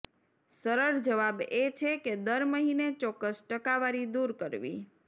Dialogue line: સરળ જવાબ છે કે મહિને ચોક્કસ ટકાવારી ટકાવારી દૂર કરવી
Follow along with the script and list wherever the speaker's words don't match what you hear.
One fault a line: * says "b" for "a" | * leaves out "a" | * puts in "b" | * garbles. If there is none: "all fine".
* puts in "એ"
* puts in "દર"
* leaves out "ટકાવારી"